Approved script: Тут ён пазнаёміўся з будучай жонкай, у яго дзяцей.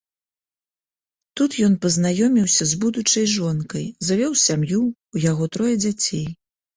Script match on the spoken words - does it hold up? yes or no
no